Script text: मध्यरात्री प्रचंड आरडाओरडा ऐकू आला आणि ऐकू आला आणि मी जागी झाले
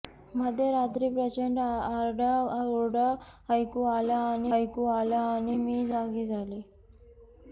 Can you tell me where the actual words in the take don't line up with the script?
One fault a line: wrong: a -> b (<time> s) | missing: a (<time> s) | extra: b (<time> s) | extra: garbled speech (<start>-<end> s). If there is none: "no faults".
no faults